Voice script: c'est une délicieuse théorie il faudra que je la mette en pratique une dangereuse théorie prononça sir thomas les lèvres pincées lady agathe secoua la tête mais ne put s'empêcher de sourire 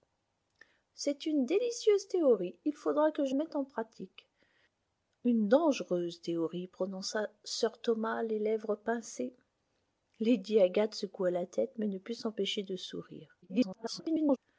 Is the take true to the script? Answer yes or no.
no